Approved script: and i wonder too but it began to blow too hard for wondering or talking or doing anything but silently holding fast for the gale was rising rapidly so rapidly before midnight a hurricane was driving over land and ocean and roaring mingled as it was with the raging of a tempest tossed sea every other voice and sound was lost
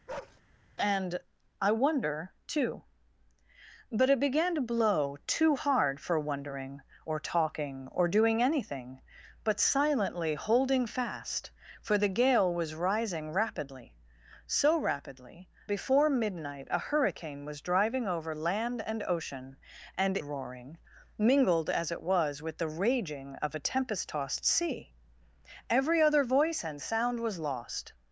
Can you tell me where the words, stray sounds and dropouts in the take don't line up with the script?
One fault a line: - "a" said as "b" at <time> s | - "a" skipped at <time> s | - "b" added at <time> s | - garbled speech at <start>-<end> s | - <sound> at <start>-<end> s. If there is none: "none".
- bark at 0.1-0.4 s